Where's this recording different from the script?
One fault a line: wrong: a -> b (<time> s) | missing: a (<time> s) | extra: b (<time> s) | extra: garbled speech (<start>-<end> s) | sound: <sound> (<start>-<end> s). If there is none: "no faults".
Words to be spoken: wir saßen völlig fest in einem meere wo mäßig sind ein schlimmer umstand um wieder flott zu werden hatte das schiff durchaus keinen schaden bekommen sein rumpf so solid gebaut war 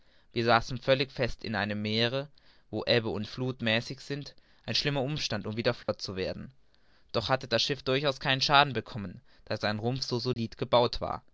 extra: ebbe und fluth (2.9 s)
sound: dropout (5.8-5.9 s)
extra: doch (7.1 s)
extra: da (9.4 s)
sound: dropout (10.3-10.4 s)